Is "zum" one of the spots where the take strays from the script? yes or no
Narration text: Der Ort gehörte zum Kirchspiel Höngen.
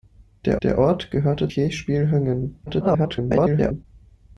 yes